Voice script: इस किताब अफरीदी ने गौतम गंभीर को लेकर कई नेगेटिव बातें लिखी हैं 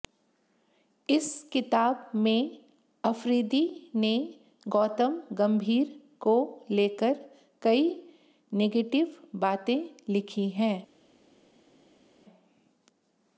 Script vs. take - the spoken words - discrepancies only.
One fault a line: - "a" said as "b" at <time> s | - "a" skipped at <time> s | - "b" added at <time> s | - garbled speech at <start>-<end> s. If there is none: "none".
- "में" added at 2.1 s